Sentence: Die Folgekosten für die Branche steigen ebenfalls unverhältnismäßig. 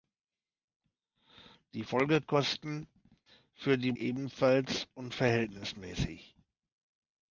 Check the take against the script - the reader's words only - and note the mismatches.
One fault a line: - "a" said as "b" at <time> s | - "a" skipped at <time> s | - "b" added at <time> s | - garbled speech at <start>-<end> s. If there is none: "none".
- "Branche steigen" skipped at 3.9 s